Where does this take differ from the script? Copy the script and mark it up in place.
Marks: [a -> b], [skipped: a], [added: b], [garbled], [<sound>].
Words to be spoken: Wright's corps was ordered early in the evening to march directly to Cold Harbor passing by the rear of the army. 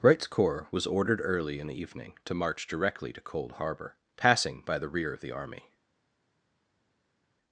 Wright's corps was ordered early in the evening to march directly to Cold Harbor passing by the rear of the army.